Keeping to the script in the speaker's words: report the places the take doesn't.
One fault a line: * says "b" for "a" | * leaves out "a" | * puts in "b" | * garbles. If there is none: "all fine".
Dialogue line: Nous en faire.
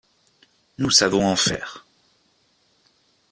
* puts in "savons"